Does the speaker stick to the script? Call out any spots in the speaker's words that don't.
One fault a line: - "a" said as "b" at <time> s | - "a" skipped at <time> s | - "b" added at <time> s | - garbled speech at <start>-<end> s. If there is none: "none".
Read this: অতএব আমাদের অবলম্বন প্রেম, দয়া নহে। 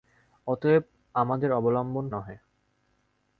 - "প্রেম দয়া" skipped at 2.0 s